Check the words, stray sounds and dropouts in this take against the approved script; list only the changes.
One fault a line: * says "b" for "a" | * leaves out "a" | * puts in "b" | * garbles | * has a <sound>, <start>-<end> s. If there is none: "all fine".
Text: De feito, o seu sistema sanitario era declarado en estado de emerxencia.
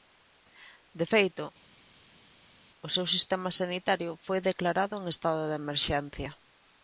* says "foi" for "era"